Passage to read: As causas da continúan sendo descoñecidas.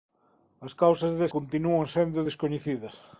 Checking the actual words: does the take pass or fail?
pass